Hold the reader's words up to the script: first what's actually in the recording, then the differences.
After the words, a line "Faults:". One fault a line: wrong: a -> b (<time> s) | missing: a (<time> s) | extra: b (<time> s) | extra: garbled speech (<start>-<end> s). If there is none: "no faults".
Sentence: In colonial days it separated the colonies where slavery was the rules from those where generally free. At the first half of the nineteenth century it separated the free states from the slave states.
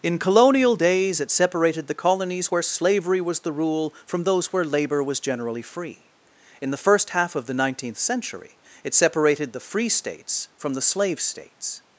In colonial days it separated the colonies where slavery was the rule from those where labor was generally free. In the first half of the nineteenth century it separated the free states from the slave states.
Faults:
wrong: rules -> rule (3.5 s)
extra: labor was (4.6 s)
wrong: At -> In (6.6 s)